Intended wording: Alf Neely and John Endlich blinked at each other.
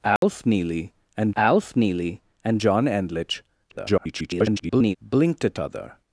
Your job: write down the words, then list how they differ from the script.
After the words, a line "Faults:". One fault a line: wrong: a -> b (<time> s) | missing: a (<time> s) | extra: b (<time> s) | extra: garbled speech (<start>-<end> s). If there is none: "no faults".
Alf Neely and alf Neely and John Endlich [garbled] blinked at other.
Faults:
extra: alf Neely and (1.4 s)
extra: garbled speech (3.7-5.0 s)
missing: each (5.6 s)